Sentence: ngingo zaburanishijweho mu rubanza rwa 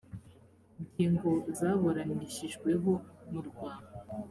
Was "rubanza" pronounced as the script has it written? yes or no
no